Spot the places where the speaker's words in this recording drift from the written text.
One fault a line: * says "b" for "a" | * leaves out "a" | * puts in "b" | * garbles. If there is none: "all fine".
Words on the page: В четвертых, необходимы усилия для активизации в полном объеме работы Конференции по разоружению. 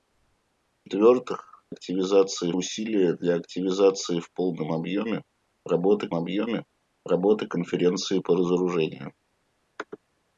* says "активизации" for "необходимы"
* puts in "объеме работы"